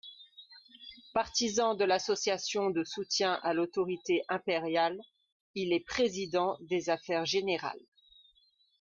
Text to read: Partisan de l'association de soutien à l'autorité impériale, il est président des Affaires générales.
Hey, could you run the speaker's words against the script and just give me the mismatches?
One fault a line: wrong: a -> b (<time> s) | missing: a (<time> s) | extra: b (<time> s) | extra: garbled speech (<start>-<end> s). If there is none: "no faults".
no faults